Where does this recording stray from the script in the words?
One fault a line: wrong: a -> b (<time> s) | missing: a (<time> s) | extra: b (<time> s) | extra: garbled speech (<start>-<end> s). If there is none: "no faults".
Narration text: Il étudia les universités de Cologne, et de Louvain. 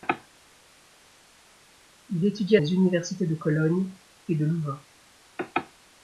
no faults